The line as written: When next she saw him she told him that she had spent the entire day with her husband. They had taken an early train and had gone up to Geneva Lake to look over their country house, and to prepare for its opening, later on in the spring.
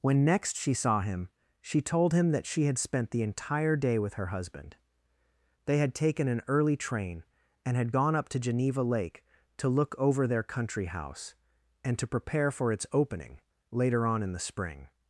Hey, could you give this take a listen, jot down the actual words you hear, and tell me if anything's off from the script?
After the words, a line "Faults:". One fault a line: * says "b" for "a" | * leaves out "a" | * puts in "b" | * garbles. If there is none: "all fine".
When next she saw him she told him that she had spent the entire day with her husband. They had taken an early train and had gone up to Geneva Lake to look over their country house, and to prepare for its opening, later on in the spring.
Faults:
all fine